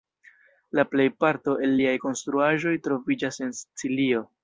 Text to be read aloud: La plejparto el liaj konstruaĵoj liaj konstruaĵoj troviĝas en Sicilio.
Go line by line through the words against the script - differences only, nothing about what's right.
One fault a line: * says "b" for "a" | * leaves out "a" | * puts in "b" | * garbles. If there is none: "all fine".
* leaves out "liaj konstruaĵoj"